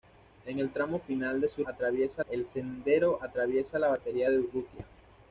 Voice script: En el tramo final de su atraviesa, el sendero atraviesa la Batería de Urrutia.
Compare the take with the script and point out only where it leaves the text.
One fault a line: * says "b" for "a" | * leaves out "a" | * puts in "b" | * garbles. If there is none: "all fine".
all fine